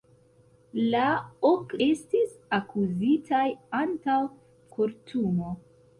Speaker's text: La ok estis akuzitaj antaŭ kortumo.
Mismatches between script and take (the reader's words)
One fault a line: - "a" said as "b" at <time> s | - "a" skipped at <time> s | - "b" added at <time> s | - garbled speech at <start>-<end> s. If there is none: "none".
none